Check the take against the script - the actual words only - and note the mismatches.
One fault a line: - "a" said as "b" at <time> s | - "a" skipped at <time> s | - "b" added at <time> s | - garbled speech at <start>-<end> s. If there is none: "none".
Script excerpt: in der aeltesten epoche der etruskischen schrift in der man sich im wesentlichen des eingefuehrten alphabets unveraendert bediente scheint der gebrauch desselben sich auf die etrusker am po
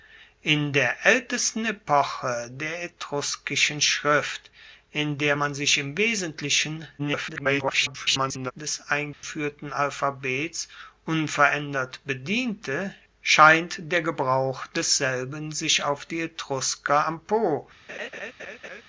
- garbled speech at 7.0-8.5 s